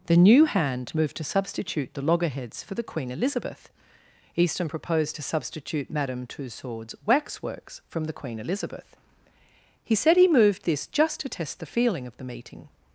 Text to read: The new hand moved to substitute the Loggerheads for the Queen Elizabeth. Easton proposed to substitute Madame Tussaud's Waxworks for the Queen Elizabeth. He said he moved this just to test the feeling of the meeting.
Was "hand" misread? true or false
false